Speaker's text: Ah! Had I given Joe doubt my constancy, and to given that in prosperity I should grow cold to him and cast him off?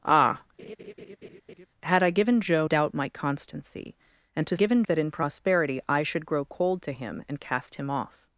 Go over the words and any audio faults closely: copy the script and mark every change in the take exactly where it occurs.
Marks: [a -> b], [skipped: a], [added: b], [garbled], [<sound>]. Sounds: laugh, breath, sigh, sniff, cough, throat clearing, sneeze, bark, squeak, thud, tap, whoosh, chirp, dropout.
Ah! [laugh] Had I given Joe doubt my constancy, and to given that in prosperity I should grow cold to him and cast him off?